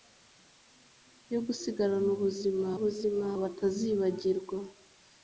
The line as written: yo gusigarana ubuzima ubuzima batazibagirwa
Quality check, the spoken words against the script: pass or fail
pass